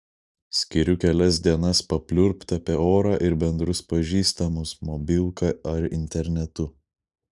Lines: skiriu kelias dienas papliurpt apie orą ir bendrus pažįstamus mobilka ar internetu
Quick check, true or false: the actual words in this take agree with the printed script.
true